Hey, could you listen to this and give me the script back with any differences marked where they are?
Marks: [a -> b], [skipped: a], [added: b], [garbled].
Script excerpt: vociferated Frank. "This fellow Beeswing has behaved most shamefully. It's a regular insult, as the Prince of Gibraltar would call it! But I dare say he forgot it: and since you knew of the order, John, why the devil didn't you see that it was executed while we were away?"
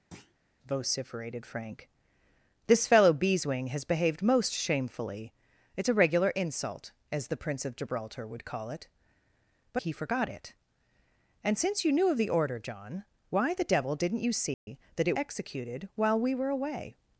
vociferated Frank. "This fellow Beeswing has behaved most shamefully. It's a regular insult, as the Prince of Gibraltar would call it! But [skipped: I dare say] he forgot it: and since you knew of the order, John, why the devil didn't you see that it [skipped: was] executed while we were away?"